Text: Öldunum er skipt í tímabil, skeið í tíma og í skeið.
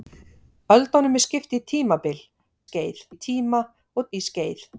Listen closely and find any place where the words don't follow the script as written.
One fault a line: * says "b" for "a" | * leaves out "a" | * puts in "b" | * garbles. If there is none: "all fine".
all fine